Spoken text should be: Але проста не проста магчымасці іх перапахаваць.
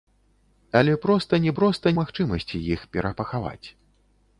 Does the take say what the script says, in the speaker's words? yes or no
yes